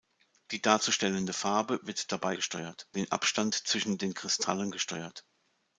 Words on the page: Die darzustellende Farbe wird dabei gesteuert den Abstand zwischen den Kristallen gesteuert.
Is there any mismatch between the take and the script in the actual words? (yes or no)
no